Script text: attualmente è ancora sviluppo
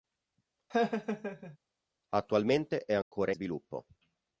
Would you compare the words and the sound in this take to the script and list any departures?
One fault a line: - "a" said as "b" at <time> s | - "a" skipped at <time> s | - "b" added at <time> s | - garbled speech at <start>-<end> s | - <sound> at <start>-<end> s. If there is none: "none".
- laugh at 0.7-1.6 s
- dropout at 3.0-3.1 s